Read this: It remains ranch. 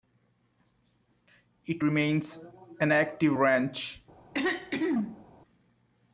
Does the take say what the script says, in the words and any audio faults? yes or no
no